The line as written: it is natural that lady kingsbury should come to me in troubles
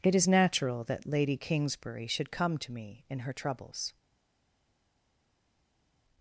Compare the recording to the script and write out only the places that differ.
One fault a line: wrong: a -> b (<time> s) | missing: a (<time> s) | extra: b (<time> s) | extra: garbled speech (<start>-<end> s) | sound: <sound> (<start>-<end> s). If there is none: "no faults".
extra: her (3.2 s)